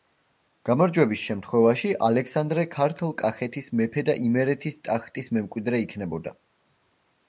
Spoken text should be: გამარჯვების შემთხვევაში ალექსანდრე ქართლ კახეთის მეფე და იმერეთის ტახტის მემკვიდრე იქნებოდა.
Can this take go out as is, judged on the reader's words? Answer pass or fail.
pass